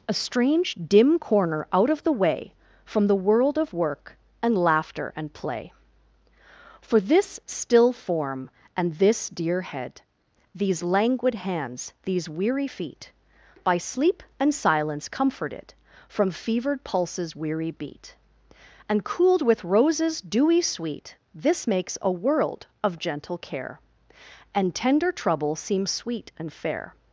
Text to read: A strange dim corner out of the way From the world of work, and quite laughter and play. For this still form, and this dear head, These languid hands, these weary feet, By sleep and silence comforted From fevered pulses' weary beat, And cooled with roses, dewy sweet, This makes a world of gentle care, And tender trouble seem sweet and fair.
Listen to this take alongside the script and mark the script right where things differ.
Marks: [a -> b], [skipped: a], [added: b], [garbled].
A strange dim corner out of the way From the world of work, and [skipped: quite] laughter and play. For this still form, and this dear head, These languid hands, these weary feet, By sleep and silence comforted From fevered pulses' weary beat, And cooled with roses, dewy sweet, This makes a world of gentle care, And tender trouble seem sweet and fair.